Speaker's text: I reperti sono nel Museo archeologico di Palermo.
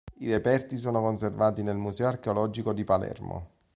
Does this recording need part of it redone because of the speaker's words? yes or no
yes